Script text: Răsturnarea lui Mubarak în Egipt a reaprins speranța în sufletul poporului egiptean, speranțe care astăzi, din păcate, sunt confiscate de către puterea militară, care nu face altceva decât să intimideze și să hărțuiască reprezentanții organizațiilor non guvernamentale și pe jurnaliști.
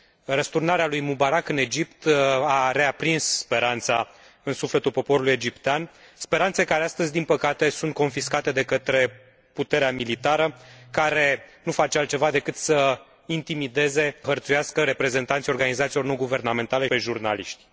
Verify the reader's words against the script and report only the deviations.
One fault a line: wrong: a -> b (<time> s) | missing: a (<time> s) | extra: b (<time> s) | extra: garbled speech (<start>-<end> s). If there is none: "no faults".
missing: și să (14.2 s)
missing: și (16.9 s)